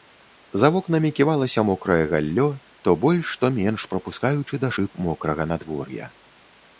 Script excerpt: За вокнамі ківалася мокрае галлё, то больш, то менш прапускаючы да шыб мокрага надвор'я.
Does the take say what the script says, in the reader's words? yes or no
yes